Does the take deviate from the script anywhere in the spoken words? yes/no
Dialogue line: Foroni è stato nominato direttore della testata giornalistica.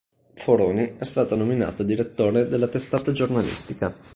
no